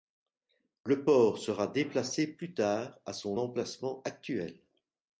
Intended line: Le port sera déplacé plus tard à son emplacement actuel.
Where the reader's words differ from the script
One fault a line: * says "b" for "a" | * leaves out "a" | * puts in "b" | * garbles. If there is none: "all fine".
all fine